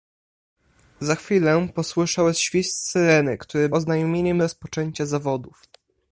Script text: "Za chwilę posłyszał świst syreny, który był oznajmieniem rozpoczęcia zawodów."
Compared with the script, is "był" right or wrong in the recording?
wrong